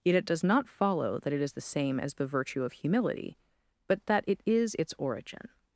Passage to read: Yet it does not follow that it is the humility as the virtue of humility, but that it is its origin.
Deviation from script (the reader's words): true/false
true